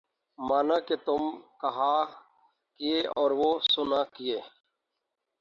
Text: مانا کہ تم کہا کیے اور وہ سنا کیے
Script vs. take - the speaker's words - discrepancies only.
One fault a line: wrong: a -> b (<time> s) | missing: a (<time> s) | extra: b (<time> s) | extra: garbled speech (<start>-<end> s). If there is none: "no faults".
no faults